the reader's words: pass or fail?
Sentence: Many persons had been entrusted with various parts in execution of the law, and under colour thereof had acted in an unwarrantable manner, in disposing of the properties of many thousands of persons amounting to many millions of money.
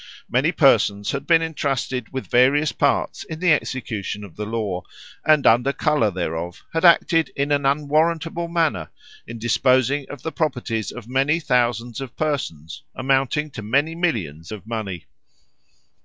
fail